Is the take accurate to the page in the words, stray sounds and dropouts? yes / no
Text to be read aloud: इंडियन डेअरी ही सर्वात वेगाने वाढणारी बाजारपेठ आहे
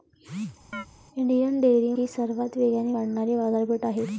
no